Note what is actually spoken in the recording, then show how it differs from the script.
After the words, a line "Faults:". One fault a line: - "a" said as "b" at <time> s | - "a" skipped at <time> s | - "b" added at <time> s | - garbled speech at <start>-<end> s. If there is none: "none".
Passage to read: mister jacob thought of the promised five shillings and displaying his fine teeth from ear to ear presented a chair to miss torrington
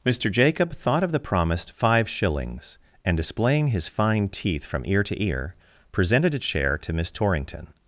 mister jacob thought of the promised five shillings and displaying his fine teeth from ear to ear presented a chair to miss torrington
Faults:
none